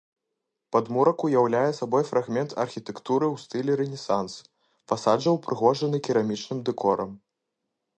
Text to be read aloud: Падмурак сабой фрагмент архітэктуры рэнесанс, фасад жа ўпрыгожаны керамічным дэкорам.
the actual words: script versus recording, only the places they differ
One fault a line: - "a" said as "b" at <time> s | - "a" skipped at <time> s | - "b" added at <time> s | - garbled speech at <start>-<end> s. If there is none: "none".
- "уяўляе" added at 1.3 s
- "ў стылі" added at 3.3 s